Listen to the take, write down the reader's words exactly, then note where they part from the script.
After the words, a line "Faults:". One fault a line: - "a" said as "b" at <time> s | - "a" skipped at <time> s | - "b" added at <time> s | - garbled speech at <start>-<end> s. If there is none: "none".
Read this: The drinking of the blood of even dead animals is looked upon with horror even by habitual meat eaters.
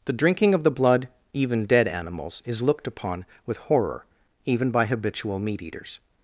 The drinking of the blood even dead animals is looked upon with horror even by habitual meat eaters.
Faults:
- "of" skipped at 1.1 s